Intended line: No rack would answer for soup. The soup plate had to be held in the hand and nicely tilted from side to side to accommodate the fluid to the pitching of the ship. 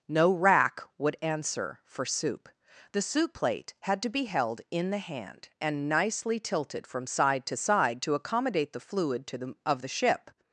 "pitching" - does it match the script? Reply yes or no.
no